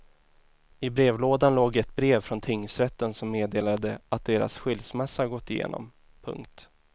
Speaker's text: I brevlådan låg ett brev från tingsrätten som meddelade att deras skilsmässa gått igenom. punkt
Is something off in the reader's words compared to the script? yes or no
no